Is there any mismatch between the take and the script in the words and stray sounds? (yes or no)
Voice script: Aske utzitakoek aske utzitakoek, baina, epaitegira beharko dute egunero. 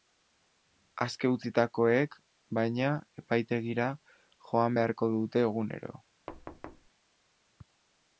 yes